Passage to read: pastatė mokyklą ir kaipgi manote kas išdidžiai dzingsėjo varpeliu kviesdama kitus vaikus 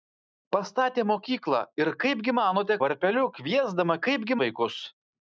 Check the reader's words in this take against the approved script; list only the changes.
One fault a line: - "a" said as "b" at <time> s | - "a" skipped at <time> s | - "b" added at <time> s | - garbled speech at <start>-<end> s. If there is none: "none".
- "kas išdidžiai dzingsėjo" skipped at 2.8 s
- "kitus" said as "kaipgi" at 4.1 s